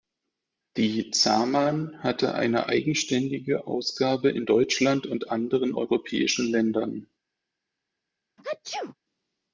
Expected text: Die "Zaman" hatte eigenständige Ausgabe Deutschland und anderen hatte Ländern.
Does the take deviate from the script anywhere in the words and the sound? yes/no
yes